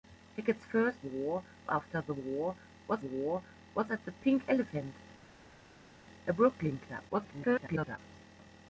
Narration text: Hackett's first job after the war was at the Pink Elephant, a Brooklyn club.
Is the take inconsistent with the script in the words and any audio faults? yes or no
yes